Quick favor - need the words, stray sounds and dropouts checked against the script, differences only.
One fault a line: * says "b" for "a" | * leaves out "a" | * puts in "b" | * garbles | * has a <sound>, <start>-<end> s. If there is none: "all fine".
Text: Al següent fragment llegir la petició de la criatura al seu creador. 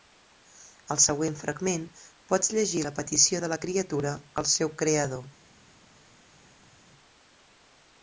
* puts in "pots"